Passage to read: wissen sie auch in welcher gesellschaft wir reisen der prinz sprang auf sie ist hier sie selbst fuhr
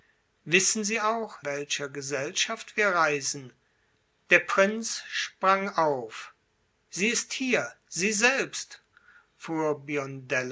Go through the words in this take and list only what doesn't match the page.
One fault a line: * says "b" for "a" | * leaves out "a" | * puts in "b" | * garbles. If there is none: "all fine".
* leaves out "in"